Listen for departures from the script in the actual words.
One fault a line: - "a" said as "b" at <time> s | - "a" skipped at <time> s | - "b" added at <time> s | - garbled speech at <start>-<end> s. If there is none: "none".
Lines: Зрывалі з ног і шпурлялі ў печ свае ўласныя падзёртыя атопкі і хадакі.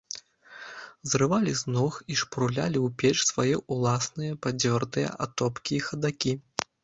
none